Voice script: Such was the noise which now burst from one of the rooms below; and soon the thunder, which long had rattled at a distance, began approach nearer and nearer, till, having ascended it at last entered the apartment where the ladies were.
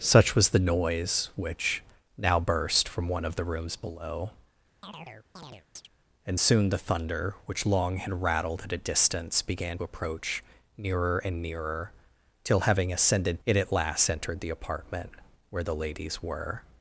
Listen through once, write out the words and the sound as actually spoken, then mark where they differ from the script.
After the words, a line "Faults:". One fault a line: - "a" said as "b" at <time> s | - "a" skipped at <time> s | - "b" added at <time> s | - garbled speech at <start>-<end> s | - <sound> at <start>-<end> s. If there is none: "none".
Such was the noise which now burst from one of the rooms below; and soon the thunder, which long had rattled at a distance, began approach nearer and nearer, till, having ascended it at last entered the apartment where the ladies were.
Faults:
- chirp at 4.8-5.9 s